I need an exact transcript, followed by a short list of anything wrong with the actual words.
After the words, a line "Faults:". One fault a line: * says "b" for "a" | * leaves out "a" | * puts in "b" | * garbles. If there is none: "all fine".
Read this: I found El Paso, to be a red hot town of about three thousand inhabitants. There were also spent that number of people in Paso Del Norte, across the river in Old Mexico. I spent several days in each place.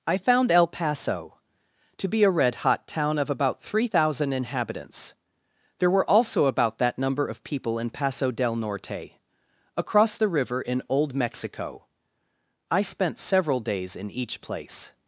I found El Paso, to be a red hot town of about three thousand inhabitants. There were also about that number of people in Paso Del Norte, across the river in Old Mexico. I spent several days in each place.
Faults:
* says "about" for "spent"